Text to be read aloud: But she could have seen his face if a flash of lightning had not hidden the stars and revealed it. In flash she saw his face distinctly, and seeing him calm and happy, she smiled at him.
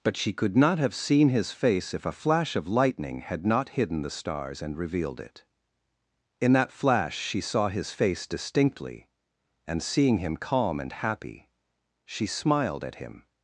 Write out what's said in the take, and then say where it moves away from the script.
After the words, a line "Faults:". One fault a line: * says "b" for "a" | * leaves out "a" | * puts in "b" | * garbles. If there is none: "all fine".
But she could not have seen his face if a flash of lightning had not hidden the stars and revealed it. In that flash she saw his face distinctly, and seeing him calm and happy, she smiled at him.
Faults:
* puts in "not"
* puts in "that"